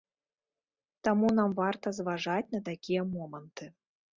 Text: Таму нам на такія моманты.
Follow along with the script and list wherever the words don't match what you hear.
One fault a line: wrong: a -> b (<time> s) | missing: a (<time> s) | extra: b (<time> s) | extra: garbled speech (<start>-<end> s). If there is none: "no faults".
extra: варта зважаць (1.6 s)